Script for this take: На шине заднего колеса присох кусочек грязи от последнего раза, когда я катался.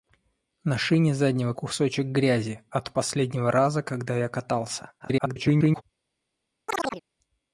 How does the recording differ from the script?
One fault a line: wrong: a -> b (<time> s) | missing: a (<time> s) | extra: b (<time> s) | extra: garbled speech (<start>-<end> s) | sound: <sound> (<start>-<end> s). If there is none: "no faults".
missing: колеса присох (1.5 s)
extra: garbled speech (5.0-5.8 s)
sound: chirp (6.7-7.0 s)